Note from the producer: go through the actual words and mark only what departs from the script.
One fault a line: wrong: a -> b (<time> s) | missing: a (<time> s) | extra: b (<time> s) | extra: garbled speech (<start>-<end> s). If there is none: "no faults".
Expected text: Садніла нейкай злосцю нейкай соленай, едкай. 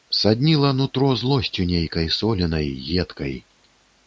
wrong: нейкай -> нутро (0.7 s)